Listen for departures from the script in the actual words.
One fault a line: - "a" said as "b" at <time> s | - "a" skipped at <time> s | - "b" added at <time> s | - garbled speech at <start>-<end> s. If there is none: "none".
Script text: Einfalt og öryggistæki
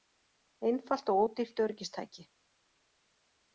- "ódýrt" added at 1.2 s